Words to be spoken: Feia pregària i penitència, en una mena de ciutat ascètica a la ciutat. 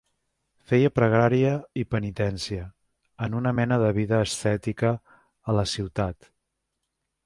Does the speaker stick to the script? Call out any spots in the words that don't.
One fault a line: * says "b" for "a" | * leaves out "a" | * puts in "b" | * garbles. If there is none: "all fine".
* says "vida" for "ciutat"